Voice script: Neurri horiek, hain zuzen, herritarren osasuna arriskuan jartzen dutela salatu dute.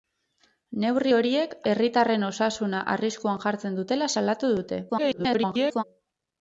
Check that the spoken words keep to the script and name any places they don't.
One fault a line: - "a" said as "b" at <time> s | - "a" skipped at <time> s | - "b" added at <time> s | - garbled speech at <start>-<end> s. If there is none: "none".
- "hain zuzen" skipped at 1.6 s
- garbled speech at 4.9-5.8 s